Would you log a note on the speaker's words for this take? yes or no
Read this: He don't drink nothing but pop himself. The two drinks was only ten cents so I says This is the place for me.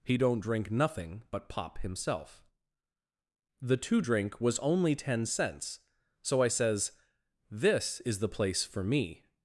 yes